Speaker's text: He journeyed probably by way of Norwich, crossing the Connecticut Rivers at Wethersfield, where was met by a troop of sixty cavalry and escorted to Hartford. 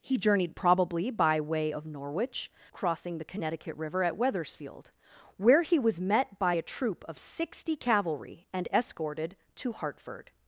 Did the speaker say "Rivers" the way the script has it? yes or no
no